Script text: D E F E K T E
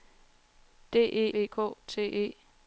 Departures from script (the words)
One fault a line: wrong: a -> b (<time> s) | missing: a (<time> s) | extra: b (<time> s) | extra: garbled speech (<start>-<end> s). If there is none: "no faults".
missing: F (1.3 s)